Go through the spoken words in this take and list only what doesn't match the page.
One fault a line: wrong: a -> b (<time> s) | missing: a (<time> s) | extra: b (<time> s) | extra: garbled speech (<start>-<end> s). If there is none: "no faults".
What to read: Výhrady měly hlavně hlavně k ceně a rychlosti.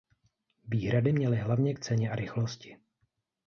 missing: hlavně (1.7 s)